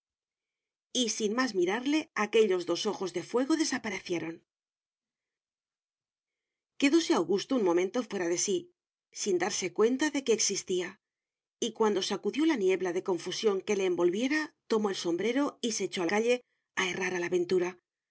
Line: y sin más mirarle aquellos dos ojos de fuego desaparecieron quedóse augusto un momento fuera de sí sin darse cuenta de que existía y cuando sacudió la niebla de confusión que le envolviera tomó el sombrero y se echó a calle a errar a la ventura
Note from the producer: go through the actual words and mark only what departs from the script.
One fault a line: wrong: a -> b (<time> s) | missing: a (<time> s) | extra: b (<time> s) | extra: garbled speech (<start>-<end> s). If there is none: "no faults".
no faults